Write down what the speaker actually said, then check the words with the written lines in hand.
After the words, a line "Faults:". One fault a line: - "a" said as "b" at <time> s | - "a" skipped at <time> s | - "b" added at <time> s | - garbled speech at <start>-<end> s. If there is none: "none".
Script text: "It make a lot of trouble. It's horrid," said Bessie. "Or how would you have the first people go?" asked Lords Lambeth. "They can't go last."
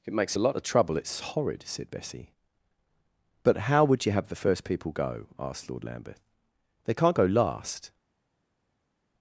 "It makes a lot of trouble. It's horrid," said Bessie. "But how would you have the first people go?" asked Lord Lambeth. "They can't go last."
Faults:
- "make" said as "makes" at 0.1 s
- "Or" said as "But" at 3.4 s
- "Lords" said as "Lord" at 5.7 s